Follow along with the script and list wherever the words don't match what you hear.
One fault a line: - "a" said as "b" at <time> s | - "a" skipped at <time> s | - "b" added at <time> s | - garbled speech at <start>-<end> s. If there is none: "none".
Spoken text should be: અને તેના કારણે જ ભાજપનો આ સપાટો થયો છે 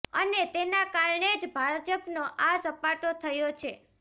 none